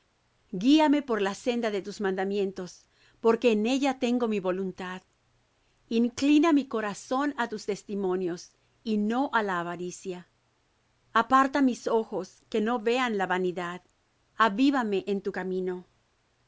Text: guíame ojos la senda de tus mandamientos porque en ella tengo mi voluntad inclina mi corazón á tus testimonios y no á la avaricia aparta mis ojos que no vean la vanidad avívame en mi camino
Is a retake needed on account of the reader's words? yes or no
yes